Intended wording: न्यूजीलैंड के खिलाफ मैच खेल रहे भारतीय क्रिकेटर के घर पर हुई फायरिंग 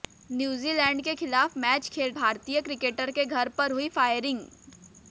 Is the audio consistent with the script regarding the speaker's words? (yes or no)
no